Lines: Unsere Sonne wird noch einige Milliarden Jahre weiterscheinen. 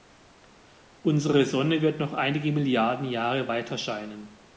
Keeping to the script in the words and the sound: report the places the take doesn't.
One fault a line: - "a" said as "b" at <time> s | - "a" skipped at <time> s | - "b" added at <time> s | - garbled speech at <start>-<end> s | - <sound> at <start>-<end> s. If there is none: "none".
none